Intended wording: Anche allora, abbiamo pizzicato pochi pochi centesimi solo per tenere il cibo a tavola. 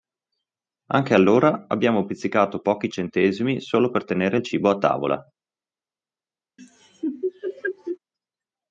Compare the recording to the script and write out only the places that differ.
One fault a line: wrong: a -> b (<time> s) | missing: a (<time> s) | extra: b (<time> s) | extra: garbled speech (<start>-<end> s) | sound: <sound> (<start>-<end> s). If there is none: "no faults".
missing: pochi (2.9 s)
sound: laugh (6.6-8.0 s)